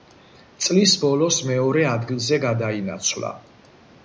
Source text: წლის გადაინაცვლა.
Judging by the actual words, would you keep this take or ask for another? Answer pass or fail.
fail